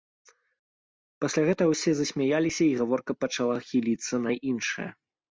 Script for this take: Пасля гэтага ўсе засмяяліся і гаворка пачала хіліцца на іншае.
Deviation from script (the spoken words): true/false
false